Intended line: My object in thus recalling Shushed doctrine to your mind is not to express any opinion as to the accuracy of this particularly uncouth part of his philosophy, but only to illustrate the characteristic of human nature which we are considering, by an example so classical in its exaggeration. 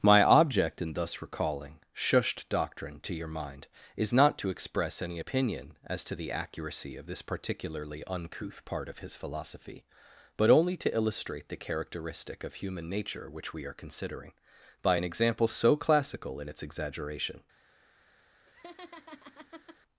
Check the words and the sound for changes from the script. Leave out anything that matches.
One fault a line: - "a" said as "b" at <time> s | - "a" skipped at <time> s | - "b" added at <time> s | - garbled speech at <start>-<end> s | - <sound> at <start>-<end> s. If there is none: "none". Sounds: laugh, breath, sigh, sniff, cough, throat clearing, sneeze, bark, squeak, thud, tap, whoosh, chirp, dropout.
- laugh at 18.5-19.8 s